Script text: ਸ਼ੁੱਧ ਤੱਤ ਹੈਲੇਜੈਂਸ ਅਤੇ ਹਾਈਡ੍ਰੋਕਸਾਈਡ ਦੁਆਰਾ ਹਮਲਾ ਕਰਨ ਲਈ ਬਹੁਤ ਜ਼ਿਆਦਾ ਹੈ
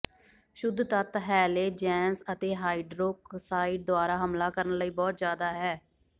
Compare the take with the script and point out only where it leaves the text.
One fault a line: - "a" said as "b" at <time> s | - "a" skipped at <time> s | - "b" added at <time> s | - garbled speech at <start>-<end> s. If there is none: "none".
none